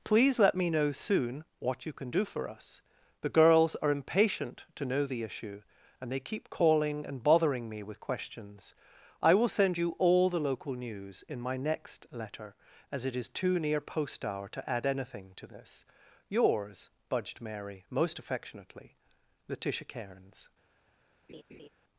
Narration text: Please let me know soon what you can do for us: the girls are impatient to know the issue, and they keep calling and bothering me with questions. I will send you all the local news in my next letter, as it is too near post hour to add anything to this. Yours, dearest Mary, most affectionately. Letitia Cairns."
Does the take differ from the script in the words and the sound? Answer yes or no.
yes